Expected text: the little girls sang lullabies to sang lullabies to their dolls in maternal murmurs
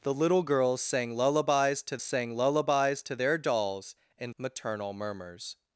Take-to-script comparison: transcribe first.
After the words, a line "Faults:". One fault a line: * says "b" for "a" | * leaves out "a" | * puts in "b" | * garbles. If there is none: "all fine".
the little girls sang lullabies to sang lullabies to their dolls in maternal murmurs
Faults:
all fine